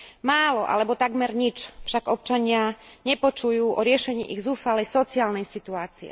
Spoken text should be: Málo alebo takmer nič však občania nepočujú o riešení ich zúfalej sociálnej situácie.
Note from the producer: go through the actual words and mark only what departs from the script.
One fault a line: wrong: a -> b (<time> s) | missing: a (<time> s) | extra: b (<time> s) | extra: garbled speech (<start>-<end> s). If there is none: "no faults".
no faults